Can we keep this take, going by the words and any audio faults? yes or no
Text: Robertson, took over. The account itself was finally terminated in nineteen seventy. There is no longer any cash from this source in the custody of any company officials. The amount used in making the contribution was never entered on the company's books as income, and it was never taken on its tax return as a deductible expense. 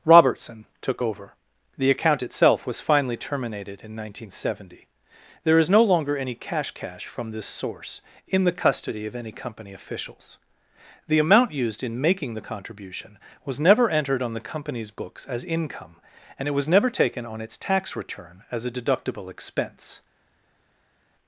no